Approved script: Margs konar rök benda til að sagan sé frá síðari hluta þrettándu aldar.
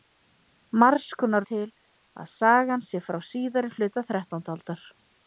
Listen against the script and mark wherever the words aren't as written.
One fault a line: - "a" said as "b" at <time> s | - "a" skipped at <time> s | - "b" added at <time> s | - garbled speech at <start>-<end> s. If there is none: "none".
- "rök benda" skipped at 1.4 s